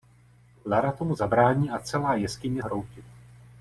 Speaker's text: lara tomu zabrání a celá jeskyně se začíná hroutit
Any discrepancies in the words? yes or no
yes